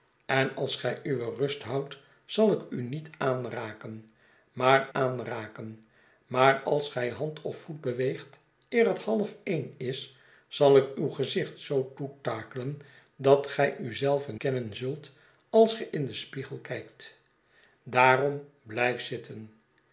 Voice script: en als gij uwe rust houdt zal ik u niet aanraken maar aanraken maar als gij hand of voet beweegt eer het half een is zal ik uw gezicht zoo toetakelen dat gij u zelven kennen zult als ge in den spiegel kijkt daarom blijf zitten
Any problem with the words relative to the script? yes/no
no